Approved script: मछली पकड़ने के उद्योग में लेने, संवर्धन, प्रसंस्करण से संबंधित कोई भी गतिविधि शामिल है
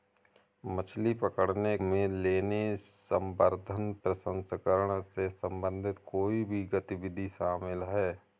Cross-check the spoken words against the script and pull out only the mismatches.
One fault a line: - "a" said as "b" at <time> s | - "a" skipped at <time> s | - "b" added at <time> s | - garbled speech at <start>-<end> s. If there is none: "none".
- "के उद्योग" skipped at 1.8 s